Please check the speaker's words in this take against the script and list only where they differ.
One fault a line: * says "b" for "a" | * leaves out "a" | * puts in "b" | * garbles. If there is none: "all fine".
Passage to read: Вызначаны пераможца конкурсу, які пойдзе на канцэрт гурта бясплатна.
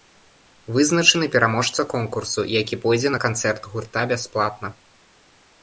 all fine